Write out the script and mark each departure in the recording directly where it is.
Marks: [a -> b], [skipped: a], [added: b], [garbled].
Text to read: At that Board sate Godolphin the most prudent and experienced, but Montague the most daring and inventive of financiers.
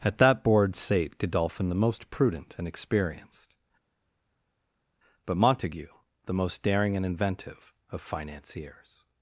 At that Board sate Godolphin the most prudent and experienced, but Montague the most daring and inventive of financiers.